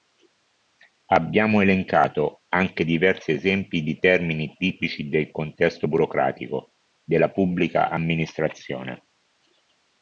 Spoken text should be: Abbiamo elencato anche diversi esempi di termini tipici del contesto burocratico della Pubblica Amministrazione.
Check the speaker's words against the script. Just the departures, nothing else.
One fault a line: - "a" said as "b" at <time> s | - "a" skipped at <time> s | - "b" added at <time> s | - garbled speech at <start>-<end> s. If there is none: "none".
none